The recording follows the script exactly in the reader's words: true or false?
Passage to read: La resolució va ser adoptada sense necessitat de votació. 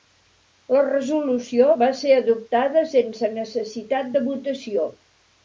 true